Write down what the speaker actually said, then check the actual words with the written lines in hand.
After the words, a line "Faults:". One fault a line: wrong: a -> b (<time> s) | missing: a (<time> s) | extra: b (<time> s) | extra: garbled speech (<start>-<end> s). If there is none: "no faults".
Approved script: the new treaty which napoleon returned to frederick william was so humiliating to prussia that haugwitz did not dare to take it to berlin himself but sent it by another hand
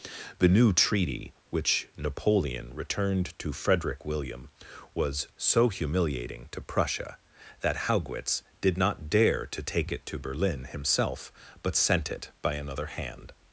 the new treaty which napoleon returned to frederick william was so humiliating to prussia that haugwitz did not dare to take it to berlin himself but sent it by another hand
Faults:
no faults